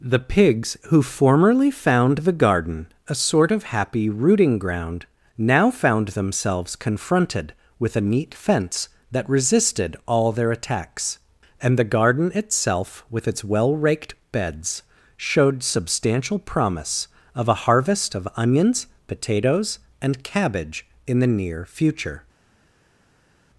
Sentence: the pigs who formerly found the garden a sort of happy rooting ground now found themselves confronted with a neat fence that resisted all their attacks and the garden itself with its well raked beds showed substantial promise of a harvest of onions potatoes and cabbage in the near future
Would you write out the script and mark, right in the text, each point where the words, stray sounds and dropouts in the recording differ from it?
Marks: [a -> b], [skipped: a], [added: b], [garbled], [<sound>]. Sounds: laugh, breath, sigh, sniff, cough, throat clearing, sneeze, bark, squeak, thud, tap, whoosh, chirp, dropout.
the pigs who formerly found the garden a sort of happy rooting ground now found themselves confronted with a neat fence that resisted all their attacks and the garden itself with its well raked beds showed substantial promise of a harvest of onions potatoes and cabbage in the near future